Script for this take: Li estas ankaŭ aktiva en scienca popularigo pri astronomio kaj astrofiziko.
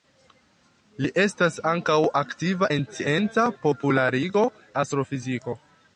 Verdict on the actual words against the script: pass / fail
fail